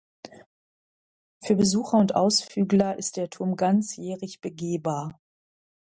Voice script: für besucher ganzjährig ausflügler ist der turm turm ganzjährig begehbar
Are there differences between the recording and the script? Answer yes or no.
yes